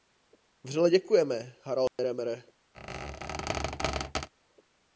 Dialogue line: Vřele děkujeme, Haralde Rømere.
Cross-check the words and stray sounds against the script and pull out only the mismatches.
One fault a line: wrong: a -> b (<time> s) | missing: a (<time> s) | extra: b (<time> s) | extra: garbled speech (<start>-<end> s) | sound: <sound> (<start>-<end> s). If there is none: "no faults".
sound: dropout (1.9-2.0 s)
sound: squeak (2.7-4.3 s)